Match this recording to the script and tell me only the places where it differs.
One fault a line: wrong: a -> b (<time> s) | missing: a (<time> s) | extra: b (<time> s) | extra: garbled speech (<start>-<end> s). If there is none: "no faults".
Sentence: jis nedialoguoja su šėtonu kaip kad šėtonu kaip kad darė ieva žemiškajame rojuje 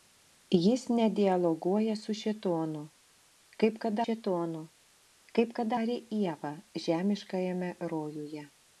no faults